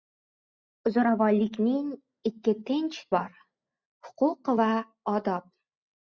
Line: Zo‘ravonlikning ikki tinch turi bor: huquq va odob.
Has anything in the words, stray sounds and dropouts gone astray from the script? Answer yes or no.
yes